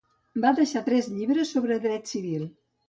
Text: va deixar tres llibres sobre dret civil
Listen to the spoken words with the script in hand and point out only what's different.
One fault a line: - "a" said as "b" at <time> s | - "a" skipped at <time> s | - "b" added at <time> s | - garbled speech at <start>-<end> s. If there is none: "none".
none